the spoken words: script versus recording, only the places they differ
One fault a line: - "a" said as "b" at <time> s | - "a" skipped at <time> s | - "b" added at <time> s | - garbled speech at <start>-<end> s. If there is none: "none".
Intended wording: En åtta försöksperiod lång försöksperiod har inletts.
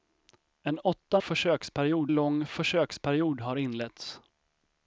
none